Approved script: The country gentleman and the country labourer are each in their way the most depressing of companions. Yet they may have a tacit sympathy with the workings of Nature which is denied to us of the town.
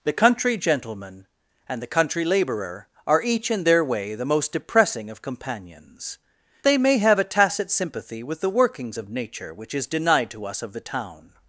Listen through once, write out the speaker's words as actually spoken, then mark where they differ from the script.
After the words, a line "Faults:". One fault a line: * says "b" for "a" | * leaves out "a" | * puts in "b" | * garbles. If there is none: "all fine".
The country gentleman and the country labourer are each in their way the most depressing of companions. They may have a tacit sympathy with the workings of Nature which is denied to us of the town.
Faults:
* leaves out "Yet"